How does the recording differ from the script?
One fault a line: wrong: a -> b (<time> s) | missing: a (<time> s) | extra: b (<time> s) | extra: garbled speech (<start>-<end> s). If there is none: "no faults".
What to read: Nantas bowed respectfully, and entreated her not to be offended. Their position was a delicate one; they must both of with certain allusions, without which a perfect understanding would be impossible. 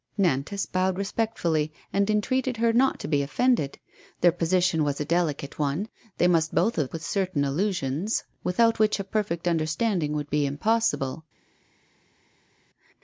no faults